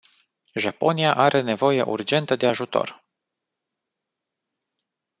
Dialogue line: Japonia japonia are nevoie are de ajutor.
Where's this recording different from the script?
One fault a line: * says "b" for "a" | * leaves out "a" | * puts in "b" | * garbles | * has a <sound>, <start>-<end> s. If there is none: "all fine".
* leaves out "japonia"
* says "urgentă" for "are"